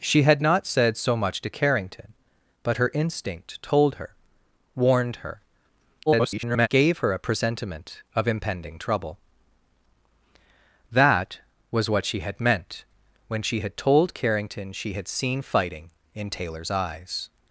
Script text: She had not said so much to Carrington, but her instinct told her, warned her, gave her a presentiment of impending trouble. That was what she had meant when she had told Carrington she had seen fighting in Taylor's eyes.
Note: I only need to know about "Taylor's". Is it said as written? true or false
true